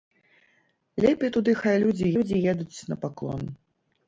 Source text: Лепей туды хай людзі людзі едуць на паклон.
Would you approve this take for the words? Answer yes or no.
yes